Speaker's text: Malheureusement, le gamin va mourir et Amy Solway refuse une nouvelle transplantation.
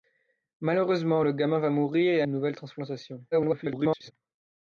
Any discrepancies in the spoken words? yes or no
yes